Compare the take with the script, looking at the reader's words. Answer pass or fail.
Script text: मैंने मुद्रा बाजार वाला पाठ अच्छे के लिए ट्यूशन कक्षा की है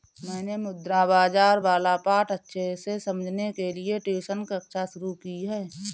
fail